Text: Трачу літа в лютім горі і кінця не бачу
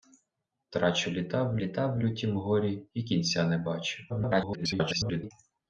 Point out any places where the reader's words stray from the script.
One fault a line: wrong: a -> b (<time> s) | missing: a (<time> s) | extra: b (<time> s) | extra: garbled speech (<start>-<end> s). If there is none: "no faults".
extra: літа в (1.6 s)
extra: garbled speech (4.1-5.3 s)